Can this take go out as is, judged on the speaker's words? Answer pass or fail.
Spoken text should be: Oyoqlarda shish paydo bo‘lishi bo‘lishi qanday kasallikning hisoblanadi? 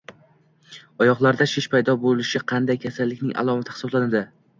fail